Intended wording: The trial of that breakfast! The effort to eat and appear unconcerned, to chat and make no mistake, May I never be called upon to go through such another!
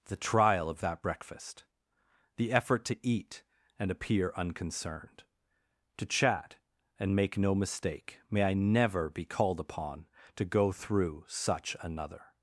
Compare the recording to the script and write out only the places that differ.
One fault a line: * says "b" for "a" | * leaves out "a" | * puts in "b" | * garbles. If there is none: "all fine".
all fine